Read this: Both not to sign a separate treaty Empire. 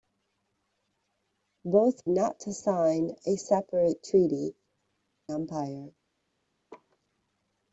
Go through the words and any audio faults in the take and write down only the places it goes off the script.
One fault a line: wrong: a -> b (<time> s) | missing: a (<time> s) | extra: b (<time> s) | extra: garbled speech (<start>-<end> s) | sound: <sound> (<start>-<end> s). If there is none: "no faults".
sound: laugh (6.7-7.0 s)